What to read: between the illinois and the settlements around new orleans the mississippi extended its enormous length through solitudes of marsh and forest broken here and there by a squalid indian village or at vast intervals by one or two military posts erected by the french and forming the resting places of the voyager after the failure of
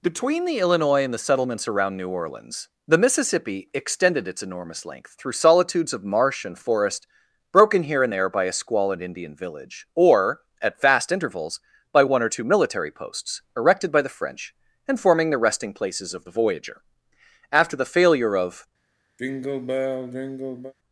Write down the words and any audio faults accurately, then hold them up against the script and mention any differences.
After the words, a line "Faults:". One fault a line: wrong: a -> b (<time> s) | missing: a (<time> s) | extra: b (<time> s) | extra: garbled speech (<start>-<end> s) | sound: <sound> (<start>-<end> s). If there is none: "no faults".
between the illinois and the settlements around new orleans the mississippi extended its enormous length through solitudes of marsh and forest broken here and there by a squalid indian village or at vast intervals by one or two military posts erected by the french and forming the resting places of the voyager after the failure of
Faults:
sound: sigh (19.2-20.7 s)